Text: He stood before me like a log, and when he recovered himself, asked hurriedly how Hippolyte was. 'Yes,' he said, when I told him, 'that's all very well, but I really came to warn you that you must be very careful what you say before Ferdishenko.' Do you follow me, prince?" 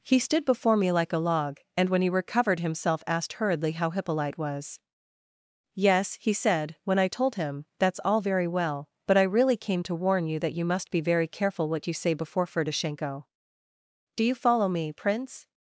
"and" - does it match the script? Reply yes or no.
yes